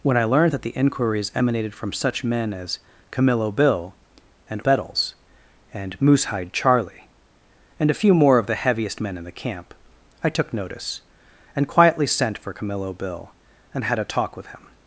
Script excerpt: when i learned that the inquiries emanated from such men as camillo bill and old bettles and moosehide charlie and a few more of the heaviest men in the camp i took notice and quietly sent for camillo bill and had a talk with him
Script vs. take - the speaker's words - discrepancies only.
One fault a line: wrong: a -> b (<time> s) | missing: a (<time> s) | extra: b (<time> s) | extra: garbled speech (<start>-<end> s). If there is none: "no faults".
missing: old (4.6 s)